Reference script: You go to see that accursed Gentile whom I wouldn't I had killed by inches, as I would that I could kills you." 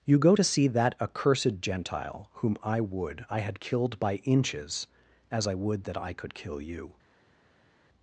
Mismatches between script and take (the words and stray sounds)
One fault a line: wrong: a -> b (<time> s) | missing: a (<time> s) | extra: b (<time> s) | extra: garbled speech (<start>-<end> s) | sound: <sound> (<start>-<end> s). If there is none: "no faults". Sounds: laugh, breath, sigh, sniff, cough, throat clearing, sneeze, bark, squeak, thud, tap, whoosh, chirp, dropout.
wrong: wouldn't -> would (2.8 s)
wrong: kills -> kill (6.3 s)